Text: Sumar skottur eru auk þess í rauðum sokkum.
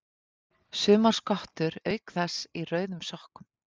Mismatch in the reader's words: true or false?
true